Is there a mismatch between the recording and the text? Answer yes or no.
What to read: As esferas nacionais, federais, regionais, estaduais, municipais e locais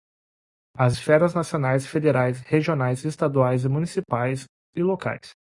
no